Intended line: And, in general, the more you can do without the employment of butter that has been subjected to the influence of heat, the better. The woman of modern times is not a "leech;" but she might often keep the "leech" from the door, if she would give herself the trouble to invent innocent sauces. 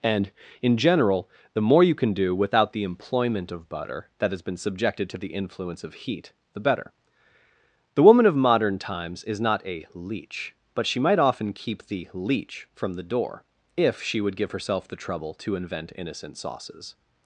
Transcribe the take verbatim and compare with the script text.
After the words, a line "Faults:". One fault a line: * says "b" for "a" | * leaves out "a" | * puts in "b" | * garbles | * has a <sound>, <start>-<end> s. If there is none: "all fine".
And, in general, the more you can do without the employment of butter that has been subjected to the influence of heat, the better. The woman of modern times is not a "leech;" but she might often keep the "leech" from the door, if she would give herself the trouble to invent innocent sauces.
Faults:
all fine